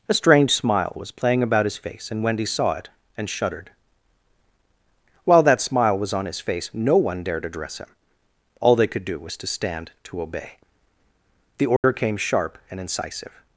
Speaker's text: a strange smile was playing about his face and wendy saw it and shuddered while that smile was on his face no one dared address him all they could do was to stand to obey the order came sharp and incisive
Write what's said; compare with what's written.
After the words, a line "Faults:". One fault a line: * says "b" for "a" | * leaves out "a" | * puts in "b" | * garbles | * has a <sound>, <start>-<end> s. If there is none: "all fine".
a strange smile was playing about his face and wendy saw it and shuddered while that smile was on his face no one dared address him all they could do was to stand to obey the order came sharp and incisive
Faults:
* has a dropout, 11.8-11.8 s